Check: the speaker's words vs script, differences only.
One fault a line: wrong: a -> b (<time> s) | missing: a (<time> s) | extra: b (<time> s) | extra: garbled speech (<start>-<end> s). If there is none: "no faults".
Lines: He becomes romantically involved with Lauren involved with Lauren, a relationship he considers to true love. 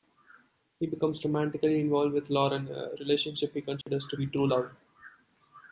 missing: involved with Lauren (2.7 s)
extra: be (4.1 s)